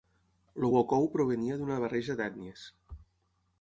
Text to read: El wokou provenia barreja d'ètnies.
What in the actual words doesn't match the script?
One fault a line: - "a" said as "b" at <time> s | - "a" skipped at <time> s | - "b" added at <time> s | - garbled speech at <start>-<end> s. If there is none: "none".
- "d'una" added at 1.6 s